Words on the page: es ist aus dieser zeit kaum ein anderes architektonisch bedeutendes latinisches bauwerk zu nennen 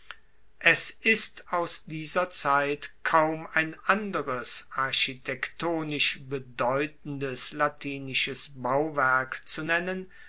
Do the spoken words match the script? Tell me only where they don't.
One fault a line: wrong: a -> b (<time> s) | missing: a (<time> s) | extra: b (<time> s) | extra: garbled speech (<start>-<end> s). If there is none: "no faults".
no faults